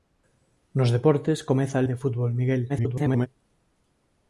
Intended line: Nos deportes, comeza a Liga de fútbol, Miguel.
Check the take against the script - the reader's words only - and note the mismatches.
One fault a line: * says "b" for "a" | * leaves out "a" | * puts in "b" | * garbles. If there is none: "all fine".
* leaves out "Liga"
* garbles